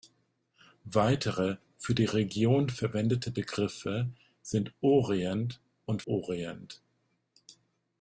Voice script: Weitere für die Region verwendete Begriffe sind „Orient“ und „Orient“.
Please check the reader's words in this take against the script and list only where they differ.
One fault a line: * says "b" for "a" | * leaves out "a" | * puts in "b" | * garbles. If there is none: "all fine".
all fine